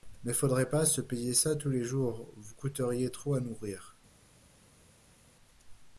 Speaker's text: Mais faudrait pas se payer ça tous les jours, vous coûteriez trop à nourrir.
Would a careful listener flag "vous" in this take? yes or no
no